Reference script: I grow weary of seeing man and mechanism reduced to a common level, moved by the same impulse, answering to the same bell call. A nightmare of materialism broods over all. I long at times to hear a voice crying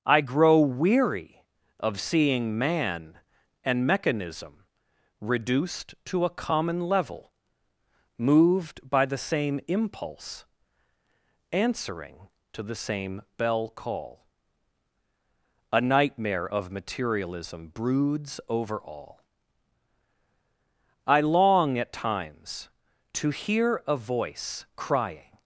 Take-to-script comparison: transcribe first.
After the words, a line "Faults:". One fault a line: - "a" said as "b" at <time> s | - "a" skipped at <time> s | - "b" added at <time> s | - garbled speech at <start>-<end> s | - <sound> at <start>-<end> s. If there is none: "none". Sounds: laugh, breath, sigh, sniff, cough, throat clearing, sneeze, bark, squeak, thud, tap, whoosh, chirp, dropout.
I grow weary of seeing man and mechanism reduced to a common level, moved by the same impulse, answering to the same bell call. A nightmare of materialism broods over all. I long at times to hear a voice crying
Faults:
none